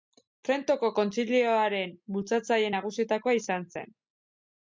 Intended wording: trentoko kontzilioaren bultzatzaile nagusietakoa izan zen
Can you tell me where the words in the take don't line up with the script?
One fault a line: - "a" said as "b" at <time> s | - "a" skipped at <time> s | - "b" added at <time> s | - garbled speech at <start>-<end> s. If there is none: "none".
none